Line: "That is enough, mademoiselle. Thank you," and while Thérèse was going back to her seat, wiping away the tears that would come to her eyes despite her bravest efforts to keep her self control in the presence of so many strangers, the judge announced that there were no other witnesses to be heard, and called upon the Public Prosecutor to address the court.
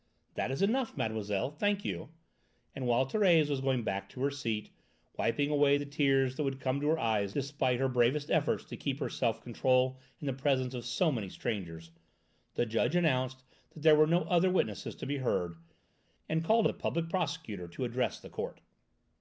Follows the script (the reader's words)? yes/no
no